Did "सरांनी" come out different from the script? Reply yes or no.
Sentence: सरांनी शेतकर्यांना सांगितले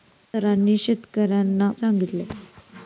no